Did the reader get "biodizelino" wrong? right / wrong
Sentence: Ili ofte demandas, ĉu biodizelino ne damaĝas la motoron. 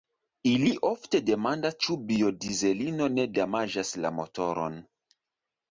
right